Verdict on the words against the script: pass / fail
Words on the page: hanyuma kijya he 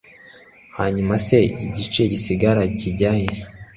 fail